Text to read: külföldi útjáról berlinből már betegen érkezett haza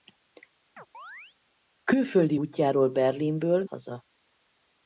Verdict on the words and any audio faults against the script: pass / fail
fail